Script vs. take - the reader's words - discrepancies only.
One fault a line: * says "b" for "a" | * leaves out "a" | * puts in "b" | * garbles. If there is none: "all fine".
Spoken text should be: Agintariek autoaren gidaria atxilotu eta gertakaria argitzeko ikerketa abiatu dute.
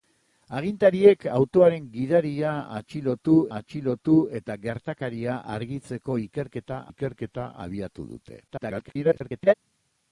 * puts in "atxilotu"
* puts in "ikerketa"
* garbles